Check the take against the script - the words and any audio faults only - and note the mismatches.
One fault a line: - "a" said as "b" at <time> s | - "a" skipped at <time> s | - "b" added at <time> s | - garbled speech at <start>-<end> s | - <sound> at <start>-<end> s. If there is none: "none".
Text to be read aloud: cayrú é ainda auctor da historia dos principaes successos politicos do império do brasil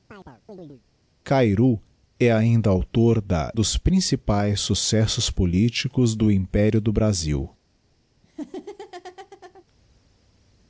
- chirp at 0.1-0.8 s
- "historia" skipped at 3.5 s
- laugh at 8.2-9.6 s